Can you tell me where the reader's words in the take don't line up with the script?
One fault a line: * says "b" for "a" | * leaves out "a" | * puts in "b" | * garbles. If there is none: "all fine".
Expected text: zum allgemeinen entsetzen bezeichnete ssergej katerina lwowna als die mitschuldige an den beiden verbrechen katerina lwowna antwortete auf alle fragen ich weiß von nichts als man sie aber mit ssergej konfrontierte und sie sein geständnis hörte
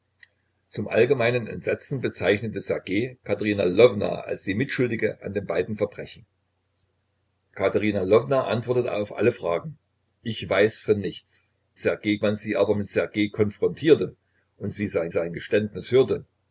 * says "ssergej" for "als"
* puts in "sein"